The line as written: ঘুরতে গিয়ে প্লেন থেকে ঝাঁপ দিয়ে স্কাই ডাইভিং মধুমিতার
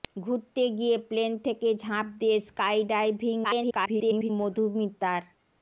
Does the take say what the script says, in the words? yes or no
no